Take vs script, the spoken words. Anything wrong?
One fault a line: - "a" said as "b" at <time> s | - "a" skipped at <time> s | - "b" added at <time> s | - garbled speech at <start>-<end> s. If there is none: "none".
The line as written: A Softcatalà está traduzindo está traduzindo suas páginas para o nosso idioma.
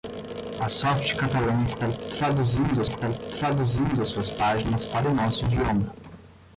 none